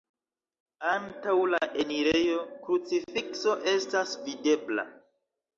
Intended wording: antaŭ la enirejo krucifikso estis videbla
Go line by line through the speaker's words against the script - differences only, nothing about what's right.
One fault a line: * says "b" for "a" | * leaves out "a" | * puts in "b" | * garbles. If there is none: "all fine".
* says "estas" for "estis"